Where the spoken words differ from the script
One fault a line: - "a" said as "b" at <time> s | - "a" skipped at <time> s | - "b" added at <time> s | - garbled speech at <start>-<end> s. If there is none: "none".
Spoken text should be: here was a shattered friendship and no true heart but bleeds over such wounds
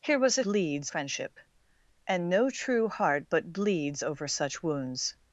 - "shattered" said as "bleeds" at 0.4 s